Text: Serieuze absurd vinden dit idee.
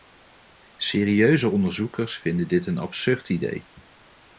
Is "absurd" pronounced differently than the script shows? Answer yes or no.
yes